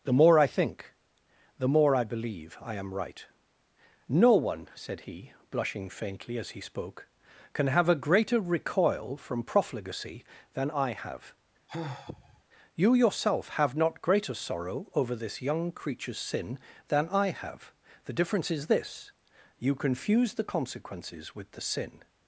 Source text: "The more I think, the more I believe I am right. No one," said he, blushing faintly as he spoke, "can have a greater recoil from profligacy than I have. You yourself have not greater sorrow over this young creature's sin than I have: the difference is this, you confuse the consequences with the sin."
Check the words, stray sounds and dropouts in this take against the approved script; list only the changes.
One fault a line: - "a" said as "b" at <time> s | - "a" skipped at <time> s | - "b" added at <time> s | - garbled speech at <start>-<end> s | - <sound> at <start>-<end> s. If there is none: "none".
- sigh at 11.7-12.4 s